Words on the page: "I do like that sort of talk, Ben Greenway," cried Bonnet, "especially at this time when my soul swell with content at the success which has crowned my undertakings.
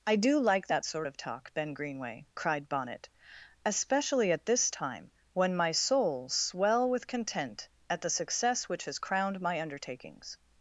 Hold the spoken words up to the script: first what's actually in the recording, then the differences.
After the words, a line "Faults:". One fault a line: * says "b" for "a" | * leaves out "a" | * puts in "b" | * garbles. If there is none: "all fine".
"I do like that sort of talk, Ben Greenway," cried Bonnet, "especially at this time when my soul swell with content at the success which has crowned my undertakings.
Faults:
all fine